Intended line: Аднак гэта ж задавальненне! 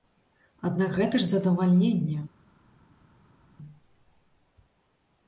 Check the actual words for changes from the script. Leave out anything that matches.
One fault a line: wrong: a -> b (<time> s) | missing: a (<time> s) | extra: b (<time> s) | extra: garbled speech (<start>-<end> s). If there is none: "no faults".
no faults